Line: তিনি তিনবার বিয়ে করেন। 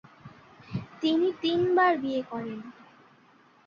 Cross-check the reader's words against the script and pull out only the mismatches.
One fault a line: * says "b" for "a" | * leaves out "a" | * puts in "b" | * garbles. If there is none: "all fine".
all fine